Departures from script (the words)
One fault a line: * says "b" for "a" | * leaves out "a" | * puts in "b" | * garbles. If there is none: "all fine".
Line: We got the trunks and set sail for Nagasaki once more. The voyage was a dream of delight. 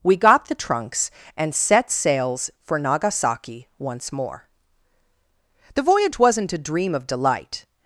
* says "sails" for "sail"
* says "wasn't" for "was"